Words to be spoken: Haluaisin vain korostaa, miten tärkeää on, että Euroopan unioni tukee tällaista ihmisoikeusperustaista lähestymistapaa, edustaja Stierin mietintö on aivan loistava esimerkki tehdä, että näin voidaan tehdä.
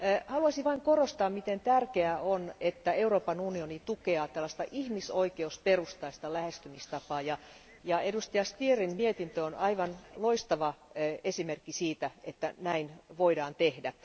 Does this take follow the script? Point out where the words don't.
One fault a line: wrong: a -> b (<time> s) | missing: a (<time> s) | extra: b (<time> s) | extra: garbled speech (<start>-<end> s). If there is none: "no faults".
extra: ja (7.8 s)
wrong: tehdä -> siitä (11.7 s)